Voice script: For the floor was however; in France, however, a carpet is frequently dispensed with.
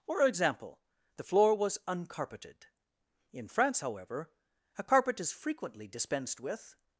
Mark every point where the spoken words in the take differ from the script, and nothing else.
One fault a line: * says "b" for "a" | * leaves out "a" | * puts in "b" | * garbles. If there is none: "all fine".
* puts in "example"
* says "uncarpeted" for "however"